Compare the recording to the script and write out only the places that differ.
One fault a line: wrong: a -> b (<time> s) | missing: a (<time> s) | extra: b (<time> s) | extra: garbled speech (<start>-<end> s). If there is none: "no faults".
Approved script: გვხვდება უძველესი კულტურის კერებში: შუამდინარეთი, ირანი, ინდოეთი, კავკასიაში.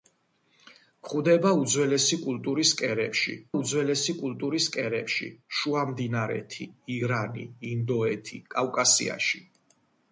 extra: უძველესი კულტურის კერებში (3.5 s)